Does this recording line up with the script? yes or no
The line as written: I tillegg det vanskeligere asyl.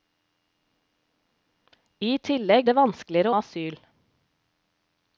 yes